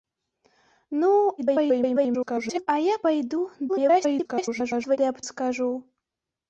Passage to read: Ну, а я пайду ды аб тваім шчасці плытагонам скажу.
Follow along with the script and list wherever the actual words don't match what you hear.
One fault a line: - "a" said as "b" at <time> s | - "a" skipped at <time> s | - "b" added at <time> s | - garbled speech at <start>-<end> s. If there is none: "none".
- garbled speech at 1.4-2.7 s
- garbled speech at 3.7-5.0 s
- "тваім шчасці плытагонам" skipped at 5.2 s